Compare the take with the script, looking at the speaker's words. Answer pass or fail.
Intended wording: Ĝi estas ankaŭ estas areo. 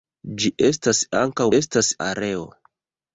pass